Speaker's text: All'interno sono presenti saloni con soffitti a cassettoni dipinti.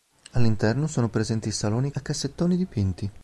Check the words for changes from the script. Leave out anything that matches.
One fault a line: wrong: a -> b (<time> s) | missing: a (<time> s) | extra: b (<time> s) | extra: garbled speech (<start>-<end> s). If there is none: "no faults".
missing: con soffitti (1.9 s)